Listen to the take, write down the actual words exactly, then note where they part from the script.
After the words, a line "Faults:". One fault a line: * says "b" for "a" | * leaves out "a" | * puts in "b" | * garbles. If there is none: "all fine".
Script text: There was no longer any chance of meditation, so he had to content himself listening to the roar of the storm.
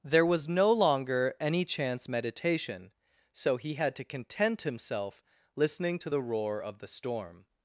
There was no longer any chance meditation, so he had to content himself listening to the roar of the storm.
Faults:
* leaves out "of"